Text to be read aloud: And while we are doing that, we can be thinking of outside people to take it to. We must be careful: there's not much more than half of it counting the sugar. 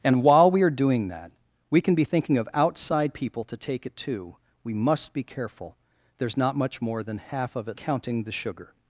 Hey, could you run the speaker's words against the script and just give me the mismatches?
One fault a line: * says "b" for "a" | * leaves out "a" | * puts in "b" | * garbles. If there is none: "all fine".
all fine